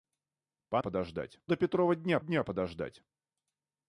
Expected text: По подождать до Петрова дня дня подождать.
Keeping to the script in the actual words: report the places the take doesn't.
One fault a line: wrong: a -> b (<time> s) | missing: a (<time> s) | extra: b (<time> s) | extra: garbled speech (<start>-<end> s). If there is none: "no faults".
no faults